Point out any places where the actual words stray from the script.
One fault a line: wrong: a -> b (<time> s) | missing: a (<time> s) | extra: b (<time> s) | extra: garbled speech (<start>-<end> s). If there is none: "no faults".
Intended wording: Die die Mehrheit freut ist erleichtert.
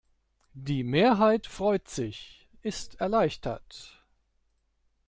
missing: die (0.8 s)
extra: sich (1.9 s)